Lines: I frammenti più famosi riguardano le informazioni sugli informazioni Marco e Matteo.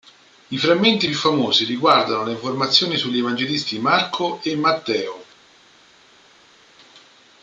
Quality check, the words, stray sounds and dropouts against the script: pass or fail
fail